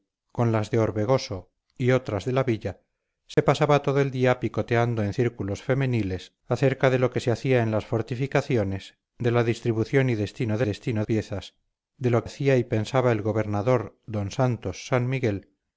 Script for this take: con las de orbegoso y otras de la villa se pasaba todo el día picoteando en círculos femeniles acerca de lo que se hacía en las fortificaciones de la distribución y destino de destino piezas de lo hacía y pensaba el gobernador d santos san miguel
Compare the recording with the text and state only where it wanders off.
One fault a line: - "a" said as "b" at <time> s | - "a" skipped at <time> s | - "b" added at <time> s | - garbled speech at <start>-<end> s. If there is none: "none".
none